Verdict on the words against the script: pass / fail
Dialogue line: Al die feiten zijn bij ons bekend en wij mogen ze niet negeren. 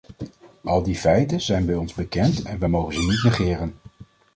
pass